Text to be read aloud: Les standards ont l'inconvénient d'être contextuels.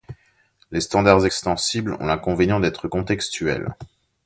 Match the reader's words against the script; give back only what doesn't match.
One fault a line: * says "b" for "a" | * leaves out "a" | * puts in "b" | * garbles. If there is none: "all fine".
* puts in "extensibles"